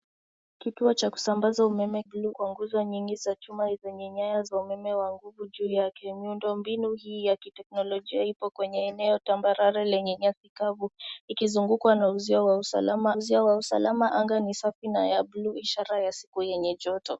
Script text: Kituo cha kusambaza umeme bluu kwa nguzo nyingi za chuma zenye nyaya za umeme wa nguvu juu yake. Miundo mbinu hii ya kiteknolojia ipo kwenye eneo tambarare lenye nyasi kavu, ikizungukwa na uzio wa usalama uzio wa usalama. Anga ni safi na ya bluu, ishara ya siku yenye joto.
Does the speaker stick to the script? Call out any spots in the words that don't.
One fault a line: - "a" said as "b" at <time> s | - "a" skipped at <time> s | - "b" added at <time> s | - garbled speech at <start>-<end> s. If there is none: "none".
none